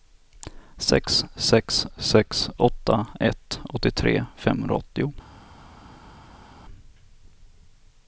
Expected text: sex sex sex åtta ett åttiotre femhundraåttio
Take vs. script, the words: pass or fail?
pass